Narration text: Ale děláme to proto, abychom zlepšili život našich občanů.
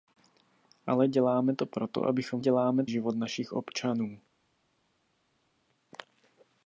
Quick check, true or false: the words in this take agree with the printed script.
false